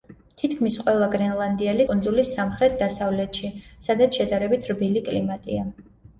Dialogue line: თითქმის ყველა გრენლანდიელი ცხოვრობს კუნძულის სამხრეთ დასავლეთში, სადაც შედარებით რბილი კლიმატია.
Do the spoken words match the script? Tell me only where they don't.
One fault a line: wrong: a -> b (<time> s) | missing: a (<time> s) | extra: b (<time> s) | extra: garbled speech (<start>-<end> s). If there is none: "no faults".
missing: ცხოვრობს (1.9 s)